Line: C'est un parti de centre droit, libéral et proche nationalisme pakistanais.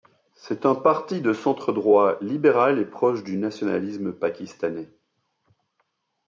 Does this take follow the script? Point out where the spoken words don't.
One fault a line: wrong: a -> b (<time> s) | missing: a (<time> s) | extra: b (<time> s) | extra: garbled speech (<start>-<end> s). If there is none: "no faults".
extra: du (3.2 s)